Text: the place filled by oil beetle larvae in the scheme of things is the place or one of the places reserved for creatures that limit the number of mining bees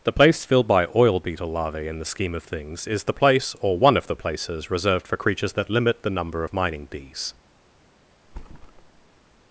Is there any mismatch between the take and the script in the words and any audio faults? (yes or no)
yes